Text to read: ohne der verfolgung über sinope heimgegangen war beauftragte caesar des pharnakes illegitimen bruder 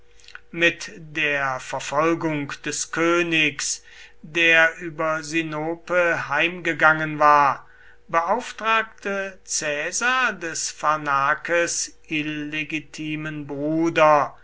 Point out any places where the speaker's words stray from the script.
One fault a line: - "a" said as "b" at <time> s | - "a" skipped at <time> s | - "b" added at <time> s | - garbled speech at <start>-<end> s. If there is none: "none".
- "ohne" said as "mit" at 0.5 s
- "des königs der" added at 2.6 s